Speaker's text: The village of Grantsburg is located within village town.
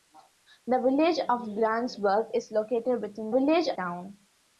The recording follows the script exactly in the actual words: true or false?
true